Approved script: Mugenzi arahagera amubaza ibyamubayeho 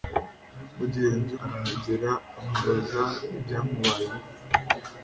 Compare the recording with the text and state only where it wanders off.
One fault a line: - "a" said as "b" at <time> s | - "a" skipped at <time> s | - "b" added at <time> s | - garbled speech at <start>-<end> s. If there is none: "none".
none